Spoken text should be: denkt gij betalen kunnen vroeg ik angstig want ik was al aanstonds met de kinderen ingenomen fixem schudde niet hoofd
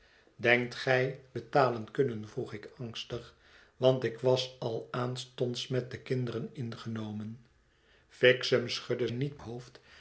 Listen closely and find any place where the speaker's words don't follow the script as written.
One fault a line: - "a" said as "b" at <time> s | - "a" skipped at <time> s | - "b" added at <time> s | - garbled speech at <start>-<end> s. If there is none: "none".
none